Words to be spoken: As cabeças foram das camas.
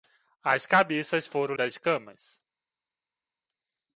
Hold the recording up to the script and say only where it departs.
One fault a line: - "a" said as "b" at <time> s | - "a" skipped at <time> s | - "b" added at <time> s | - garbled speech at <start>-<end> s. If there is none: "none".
none